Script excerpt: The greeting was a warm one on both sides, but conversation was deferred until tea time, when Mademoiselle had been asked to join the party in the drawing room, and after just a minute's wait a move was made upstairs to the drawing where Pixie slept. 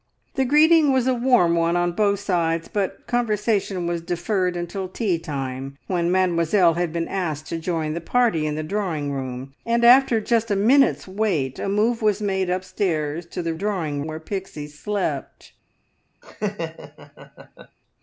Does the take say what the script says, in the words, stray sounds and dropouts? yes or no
no